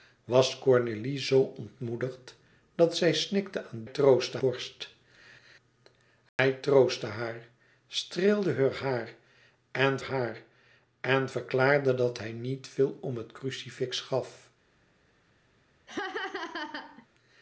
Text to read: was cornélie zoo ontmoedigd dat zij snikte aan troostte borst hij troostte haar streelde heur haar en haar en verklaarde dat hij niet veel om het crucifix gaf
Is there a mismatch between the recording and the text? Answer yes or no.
no